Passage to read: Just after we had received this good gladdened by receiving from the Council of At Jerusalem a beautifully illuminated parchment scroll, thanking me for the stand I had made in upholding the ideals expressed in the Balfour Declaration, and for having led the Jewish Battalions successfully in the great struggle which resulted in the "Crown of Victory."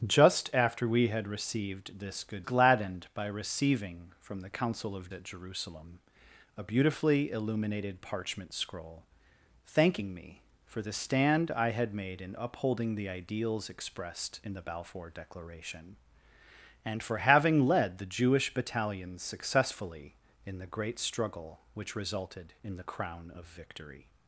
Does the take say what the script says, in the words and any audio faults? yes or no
yes